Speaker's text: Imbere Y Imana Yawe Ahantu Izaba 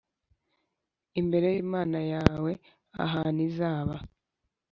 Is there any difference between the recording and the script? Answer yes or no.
no